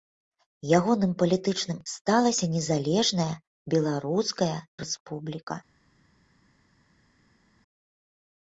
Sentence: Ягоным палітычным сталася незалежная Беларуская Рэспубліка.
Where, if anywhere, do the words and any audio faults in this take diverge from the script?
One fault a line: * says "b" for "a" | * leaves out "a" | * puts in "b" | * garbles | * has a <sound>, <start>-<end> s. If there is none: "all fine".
all fine